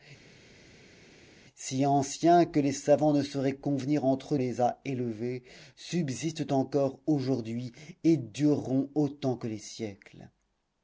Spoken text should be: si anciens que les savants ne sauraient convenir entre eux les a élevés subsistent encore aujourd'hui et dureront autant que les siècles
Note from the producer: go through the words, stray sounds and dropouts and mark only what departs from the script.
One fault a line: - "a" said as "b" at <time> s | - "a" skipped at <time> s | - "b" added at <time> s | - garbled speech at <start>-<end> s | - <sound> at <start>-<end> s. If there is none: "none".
none